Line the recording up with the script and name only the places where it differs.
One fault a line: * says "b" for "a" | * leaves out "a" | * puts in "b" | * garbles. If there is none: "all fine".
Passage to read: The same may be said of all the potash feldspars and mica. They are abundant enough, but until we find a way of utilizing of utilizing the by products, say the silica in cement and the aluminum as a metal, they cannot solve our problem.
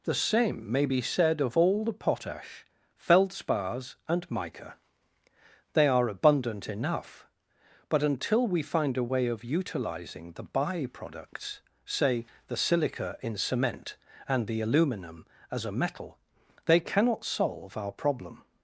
* leaves out "of utilizing"